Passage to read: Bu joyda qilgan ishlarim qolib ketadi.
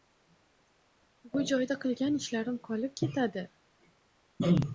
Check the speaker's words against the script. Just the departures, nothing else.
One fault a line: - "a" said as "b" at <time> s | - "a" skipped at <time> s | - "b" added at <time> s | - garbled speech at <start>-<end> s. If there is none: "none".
none